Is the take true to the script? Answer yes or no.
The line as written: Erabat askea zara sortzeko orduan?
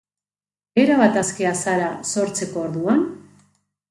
yes